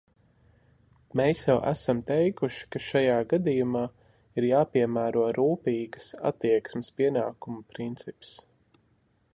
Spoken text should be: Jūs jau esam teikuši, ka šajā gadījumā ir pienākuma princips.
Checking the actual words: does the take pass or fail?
fail